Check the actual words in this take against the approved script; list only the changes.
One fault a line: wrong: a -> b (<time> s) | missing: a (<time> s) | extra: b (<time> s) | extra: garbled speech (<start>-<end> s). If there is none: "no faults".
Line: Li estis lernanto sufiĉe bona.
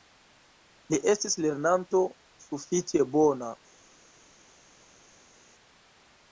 no faults